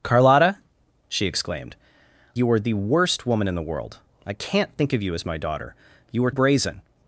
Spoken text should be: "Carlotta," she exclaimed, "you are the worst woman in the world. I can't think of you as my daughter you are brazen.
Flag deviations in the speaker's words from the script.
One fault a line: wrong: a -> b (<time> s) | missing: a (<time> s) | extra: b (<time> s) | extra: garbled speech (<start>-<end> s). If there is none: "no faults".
no faults